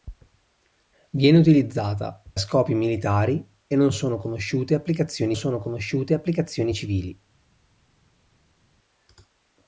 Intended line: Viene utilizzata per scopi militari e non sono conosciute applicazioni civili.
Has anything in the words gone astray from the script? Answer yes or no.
yes